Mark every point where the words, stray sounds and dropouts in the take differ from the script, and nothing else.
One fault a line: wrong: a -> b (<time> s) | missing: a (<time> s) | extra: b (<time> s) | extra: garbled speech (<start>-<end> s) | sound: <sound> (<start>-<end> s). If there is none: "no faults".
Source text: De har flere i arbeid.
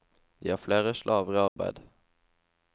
extra: slaver (0.9 s)
sound: dropout (1.5-1.6 s)